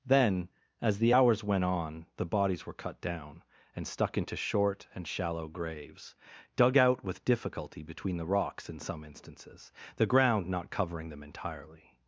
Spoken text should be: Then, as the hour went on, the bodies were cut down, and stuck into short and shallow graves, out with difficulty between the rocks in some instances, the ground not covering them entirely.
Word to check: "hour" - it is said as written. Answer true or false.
false